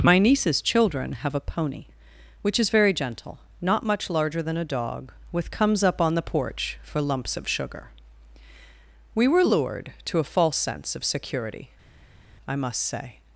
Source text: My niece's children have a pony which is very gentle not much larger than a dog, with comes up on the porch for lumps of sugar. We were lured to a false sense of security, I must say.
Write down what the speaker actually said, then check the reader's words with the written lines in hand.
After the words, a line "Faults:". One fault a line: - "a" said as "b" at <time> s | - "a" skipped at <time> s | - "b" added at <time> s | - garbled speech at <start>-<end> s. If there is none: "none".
My niece's children have a pony which is very gentle not much larger than a dog, with comes up on the porch for lumps of sugar. We were lured to a false sense of security, I must say.
Faults:
none